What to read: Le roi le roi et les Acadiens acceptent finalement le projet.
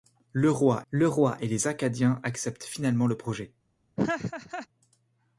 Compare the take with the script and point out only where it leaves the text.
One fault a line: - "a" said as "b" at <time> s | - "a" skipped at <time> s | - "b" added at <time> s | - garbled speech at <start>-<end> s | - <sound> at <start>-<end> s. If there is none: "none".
- laugh at 4.0-4.7 s